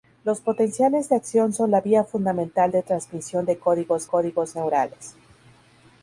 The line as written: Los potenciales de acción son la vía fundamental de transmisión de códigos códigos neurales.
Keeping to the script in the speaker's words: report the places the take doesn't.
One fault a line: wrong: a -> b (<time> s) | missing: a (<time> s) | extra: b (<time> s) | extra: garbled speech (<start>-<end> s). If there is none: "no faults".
no faults